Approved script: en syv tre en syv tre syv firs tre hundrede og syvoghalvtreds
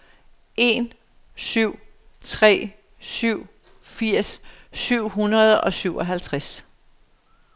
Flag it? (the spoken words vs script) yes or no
yes